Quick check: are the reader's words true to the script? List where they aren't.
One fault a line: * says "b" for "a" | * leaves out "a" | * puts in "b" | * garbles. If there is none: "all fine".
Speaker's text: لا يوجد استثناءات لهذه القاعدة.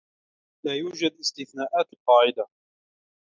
* leaves out "لهذه"